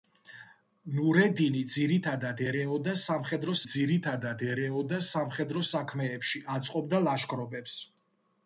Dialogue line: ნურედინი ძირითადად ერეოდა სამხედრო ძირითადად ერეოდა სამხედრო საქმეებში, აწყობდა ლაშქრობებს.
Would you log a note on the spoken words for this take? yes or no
no